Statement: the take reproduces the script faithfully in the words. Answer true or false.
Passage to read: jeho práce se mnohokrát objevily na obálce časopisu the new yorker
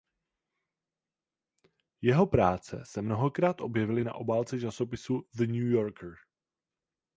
true